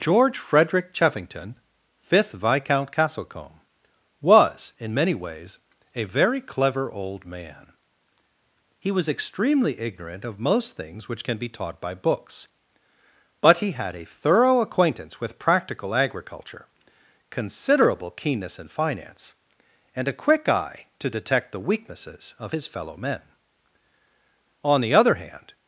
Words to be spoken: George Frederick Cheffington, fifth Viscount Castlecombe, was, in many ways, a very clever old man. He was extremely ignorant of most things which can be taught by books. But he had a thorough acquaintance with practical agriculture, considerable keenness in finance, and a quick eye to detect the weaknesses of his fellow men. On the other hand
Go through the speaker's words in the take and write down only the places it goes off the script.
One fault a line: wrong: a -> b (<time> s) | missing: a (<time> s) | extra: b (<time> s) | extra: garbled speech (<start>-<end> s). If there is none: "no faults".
no faults